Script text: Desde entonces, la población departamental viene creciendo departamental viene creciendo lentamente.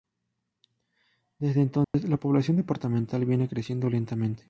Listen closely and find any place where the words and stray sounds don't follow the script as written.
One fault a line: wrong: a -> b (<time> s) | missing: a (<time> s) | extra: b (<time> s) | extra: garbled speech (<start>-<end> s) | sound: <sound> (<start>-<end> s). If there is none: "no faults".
sound: dropout (1.8-1.9 s)
missing: departamental viene creciendo (3.9 s)